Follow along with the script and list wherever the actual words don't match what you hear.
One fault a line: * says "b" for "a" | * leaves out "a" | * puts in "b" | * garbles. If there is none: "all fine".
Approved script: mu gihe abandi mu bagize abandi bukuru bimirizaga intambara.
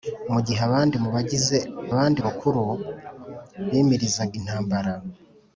all fine